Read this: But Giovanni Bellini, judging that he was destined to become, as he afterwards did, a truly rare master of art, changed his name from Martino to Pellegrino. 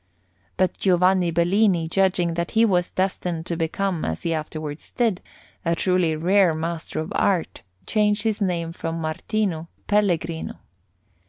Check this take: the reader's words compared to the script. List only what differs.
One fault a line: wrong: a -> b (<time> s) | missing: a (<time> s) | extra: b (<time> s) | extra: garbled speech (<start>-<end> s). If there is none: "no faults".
missing: to (9.7 s)